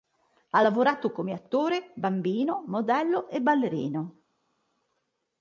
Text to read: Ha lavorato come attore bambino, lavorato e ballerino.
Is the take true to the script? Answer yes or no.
no